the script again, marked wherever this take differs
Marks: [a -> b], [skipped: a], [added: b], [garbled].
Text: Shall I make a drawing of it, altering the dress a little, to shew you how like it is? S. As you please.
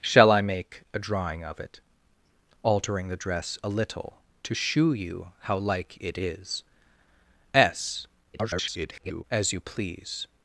Shall I make a drawing of it, altering the dress a little, to shew you how like it is? S. [garbled] As you please.